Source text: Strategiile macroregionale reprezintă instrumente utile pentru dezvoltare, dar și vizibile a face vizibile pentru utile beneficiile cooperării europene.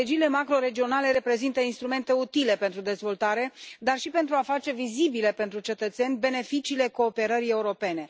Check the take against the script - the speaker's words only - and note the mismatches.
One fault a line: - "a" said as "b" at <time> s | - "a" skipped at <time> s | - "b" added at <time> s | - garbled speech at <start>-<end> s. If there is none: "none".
- "vizibile" said as "pentru" at 4.1 s
- "utile" said as "cetățeni" at 5.6 s